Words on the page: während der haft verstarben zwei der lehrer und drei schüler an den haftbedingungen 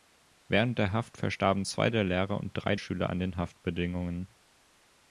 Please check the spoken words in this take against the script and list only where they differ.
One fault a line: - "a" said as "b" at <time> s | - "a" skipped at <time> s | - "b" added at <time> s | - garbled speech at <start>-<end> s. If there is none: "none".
none